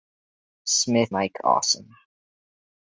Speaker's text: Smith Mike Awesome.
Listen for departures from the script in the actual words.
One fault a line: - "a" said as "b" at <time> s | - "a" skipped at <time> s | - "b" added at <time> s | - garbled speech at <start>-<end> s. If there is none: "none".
none